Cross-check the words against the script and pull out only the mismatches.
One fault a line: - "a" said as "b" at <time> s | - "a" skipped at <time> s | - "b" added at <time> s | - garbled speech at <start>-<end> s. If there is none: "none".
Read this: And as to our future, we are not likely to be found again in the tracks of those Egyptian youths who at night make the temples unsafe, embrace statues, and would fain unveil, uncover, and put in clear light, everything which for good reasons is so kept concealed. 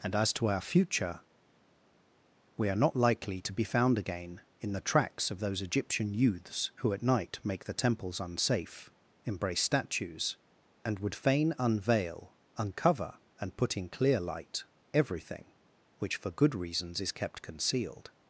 - "so" skipped at 17.1 s